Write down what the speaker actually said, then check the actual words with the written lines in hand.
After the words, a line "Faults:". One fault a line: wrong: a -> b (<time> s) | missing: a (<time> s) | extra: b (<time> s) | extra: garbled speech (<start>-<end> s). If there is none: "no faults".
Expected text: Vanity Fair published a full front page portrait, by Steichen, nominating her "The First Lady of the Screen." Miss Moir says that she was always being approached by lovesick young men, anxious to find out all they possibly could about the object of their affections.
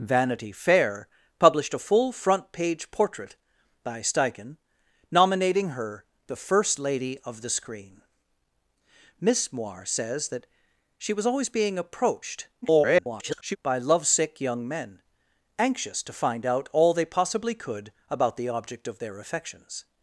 Vanity Fair published a full front page portrait, by Steichen, nominating her "The First Lady of the Screen." Miss Moir says that she was always being approached [garbled] by lovesick young men, anxious to find out all they possibly could about the object of their affections.
Faults:
extra: garbled speech (12.6-13.6 s)